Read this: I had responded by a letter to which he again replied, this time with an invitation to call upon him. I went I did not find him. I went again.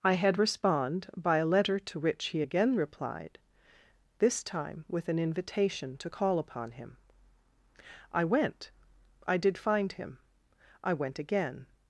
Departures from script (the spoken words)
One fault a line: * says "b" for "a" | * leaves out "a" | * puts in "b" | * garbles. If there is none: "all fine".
* says "respond" for "responded"
* leaves out "not"